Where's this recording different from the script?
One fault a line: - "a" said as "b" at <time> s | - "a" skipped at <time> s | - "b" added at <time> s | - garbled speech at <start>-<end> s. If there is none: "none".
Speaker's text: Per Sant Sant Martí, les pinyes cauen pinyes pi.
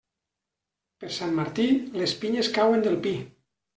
- "Sant" skipped at 1.4 s
- "pinyes" said as "del" at 2.9 s